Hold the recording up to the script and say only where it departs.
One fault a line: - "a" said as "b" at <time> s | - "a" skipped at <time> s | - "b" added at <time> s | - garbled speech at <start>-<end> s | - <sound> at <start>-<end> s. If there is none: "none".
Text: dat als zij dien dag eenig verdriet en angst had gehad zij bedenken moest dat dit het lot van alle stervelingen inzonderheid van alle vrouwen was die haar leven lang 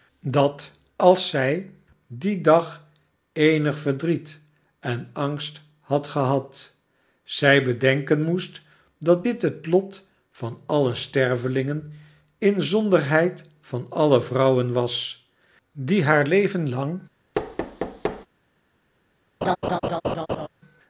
- thud at 17.3-18.3 s
- laugh at 19.4-20.5 s